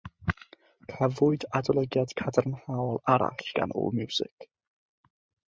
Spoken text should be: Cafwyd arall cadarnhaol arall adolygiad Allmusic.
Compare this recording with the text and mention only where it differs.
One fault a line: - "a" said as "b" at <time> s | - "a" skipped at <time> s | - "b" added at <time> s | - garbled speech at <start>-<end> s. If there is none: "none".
- "arall" said as "adolygiad" at 1.6 s
- "adolygiad" said as "gan" at 3.6 s